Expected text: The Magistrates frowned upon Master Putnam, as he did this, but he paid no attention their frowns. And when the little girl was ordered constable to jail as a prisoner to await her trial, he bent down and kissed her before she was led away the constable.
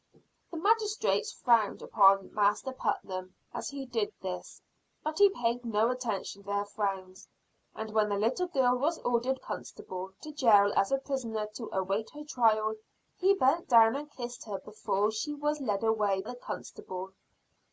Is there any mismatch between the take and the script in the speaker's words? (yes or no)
no